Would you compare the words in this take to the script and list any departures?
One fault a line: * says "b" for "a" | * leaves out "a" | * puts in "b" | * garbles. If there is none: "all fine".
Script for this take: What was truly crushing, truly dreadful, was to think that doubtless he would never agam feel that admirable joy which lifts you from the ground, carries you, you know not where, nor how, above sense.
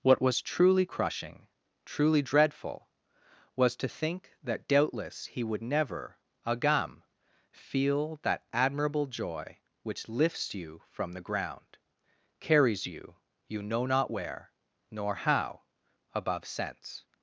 all fine